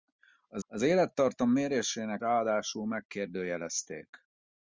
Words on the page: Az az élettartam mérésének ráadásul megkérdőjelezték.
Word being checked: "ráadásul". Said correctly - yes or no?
yes